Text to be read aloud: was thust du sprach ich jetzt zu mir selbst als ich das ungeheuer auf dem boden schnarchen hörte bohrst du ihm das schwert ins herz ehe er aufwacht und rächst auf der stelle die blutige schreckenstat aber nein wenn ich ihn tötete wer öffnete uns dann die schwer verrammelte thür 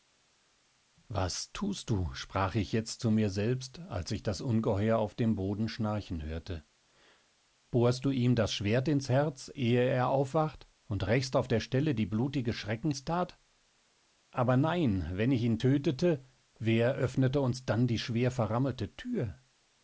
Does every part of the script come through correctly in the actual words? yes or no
yes